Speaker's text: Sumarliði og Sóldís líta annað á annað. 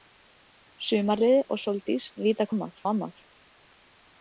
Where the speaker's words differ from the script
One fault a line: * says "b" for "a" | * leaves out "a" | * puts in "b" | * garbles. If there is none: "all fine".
all fine